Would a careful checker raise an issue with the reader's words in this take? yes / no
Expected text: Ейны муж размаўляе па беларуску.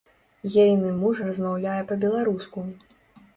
no